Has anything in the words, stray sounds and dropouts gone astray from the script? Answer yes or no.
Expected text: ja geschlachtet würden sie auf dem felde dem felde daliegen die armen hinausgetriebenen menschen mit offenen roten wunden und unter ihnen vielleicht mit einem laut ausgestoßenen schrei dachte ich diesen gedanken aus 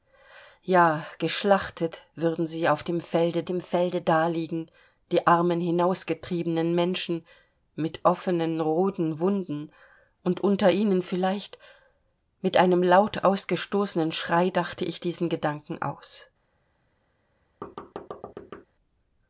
yes